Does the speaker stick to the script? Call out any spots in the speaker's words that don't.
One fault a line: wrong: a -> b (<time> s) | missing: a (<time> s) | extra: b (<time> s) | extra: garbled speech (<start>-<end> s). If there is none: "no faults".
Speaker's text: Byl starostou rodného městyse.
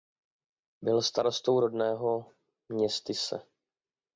no faults